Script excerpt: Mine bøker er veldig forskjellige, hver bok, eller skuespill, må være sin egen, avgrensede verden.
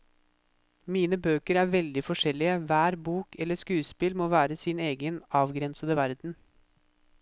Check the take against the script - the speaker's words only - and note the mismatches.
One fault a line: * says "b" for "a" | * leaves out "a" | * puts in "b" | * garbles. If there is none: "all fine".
all fine